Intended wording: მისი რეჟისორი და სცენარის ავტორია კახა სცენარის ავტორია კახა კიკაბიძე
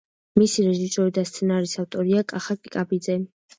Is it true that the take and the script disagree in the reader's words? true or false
true